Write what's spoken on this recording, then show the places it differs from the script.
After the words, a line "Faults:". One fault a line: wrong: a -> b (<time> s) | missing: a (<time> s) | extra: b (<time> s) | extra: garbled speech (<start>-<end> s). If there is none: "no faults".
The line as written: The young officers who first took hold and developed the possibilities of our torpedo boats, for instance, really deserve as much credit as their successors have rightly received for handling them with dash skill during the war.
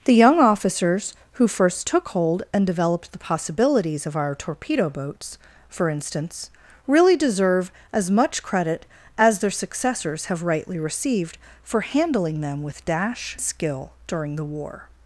The young officers who first took hold and developed the possibilities of our torpedo boats, for instance, really deserve as much credit as their successors have rightly received for handling them with dash skill during the war.
Faults:
no faults